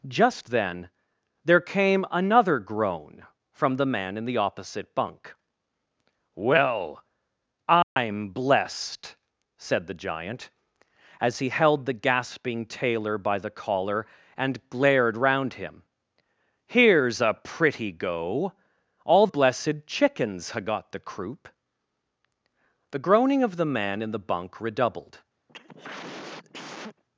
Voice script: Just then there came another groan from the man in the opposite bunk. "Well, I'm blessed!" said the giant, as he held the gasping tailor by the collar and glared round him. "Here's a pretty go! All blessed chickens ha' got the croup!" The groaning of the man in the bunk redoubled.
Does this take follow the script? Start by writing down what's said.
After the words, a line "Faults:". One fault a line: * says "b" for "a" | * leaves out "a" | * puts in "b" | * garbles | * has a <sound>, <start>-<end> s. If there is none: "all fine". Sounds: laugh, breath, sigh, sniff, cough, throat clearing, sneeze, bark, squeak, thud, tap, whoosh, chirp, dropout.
Just then there came another groan from the man in the opposite bunk. "Well, I'm blessed!" said the giant, as he held the gasping tailor by the collar and glared round him. "Here's a pretty go! All blessed chickens ha' got the croup!" The groaning of the man in the bunk redoubled.
Faults:
* has a dropout, 7.8-8.0 s
* has a cough, 25.5-27.0 s